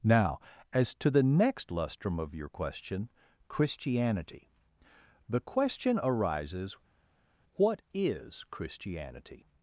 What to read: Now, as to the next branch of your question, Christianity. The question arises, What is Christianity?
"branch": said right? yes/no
no